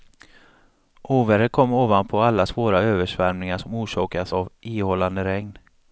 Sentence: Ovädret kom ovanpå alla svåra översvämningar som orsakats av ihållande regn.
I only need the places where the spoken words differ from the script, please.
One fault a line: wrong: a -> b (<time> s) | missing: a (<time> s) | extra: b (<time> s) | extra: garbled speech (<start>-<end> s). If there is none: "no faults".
no faults